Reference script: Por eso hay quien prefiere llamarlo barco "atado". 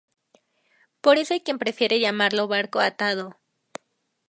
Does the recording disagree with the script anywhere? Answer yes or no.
no